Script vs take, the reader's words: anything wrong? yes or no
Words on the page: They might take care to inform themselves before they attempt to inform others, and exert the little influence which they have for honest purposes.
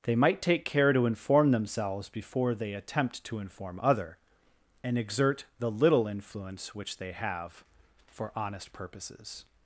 yes